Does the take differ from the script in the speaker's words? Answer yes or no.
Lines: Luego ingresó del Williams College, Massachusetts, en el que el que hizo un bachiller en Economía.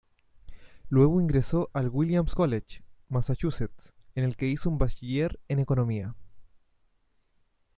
yes